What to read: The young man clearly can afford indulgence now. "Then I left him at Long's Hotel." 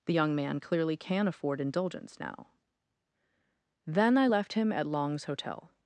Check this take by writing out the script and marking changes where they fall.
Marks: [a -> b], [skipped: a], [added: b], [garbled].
The young man clearly can afford indulgence now. "Then I left him at Long's Hotel."